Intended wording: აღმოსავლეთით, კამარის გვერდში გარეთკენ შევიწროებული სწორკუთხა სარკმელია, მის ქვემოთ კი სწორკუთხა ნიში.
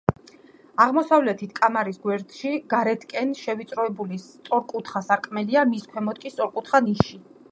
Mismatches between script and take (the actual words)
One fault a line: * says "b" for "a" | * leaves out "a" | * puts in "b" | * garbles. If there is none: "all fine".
all fine